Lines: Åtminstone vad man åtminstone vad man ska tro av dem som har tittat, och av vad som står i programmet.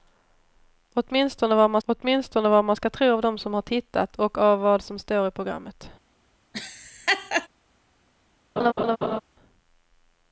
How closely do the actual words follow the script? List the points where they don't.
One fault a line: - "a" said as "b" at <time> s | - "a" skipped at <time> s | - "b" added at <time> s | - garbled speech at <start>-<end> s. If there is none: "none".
none